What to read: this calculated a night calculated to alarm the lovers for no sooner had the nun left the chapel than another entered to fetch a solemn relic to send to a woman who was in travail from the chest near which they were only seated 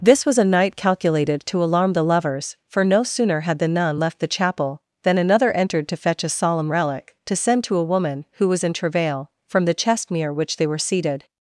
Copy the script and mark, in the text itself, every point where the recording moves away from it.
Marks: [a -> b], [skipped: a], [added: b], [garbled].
this [calculated -> was] a night calculated to alarm the lovers for no sooner had the nun left the chapel than another entered to fetch a solemn relic to send to a woman who was in travail from the chest near which they were [skipped: only] seated